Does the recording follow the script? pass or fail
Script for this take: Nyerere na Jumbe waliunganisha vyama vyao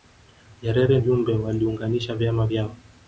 fail